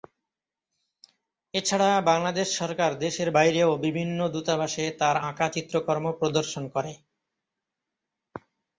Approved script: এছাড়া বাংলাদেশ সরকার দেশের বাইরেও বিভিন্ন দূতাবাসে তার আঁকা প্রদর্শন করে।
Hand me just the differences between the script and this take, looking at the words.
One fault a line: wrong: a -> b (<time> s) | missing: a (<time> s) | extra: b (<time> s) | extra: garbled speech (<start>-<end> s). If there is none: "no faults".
extra: চিত্রকর্ম (5.5 s)